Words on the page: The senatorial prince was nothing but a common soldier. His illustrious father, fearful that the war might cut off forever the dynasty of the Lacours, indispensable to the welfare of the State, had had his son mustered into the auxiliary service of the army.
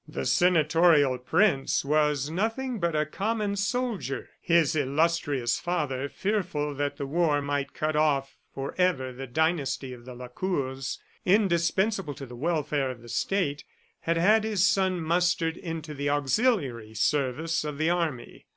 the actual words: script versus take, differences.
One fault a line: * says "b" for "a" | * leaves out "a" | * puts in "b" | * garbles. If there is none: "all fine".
all fine